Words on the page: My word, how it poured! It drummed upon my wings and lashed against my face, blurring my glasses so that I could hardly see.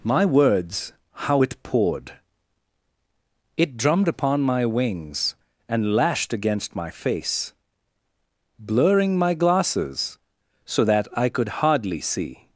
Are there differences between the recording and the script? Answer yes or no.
yes